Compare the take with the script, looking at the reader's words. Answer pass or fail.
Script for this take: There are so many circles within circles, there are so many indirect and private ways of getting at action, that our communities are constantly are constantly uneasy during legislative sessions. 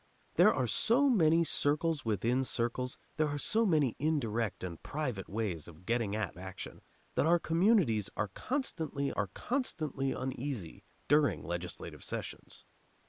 pass